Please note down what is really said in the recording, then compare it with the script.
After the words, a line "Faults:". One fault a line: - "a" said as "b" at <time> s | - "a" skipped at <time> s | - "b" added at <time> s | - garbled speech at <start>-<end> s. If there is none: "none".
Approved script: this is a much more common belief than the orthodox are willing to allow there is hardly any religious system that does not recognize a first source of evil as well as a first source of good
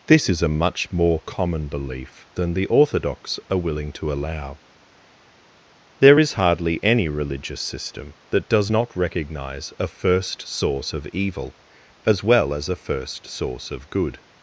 this is a much more common belief than the orthodox are willing to allow there is hardly any religious system that does not recognize a first source of evil as well as a first source of good
Faults:
none